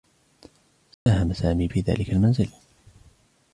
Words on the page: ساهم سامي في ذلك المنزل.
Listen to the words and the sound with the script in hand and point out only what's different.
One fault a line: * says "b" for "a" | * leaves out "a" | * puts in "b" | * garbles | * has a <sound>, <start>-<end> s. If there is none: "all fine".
* has a dropout, 0.9-1.1 s